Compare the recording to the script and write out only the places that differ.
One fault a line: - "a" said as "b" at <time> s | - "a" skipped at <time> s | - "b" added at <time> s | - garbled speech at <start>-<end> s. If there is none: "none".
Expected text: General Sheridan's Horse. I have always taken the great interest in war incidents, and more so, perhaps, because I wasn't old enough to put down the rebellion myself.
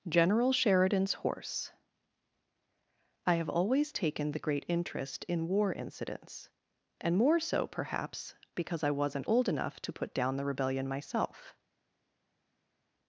none